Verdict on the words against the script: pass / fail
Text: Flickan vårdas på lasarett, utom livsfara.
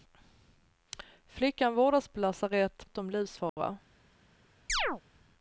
pass